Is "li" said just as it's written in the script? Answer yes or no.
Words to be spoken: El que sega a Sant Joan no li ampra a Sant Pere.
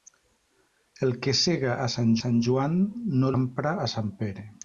no